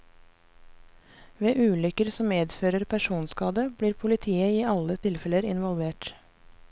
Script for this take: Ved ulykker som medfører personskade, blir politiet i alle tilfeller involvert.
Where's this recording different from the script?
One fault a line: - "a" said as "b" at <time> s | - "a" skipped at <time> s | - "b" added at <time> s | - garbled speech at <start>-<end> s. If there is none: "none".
none